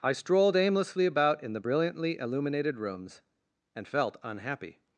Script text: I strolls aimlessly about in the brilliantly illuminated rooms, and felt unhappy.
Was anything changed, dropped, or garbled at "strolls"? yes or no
yes